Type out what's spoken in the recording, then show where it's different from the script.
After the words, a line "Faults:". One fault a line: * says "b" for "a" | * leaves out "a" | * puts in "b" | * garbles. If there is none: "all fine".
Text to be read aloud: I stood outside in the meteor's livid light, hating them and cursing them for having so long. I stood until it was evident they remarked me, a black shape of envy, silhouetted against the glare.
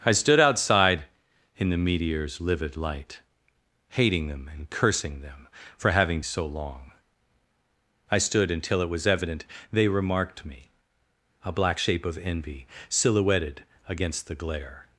I stood outside in the meteor's livid light, hating them and cursing them for having so long. I stood until it was evident they remarked me, a black shape of envy, silhouetted against the glare.
Faults:
all fine